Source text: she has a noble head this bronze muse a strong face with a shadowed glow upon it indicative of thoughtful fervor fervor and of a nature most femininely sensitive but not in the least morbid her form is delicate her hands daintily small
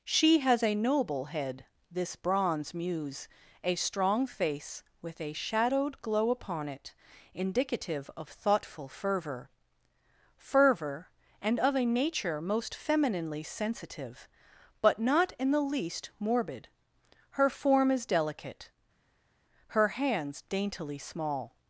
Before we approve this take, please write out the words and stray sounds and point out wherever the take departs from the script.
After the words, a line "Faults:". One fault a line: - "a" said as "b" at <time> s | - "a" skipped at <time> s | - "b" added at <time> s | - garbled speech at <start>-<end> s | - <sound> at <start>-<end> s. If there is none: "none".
she has a noble head this bronze muse a strong face with a shadowed glow upon it indicative of thoughtful fervor fervor and of a nature most femininely sensitive but not in the least morbid her form is delicate her hands daintily small
Faults:
none